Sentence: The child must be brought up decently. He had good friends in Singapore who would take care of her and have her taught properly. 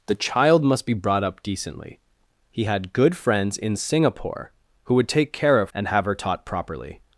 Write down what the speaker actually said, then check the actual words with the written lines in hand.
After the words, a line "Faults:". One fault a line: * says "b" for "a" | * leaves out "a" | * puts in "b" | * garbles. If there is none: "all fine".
The child must be brought up decently. He had good friends in Singapore who would take care of and have her taught properly.
Faults:
* leaves out "her"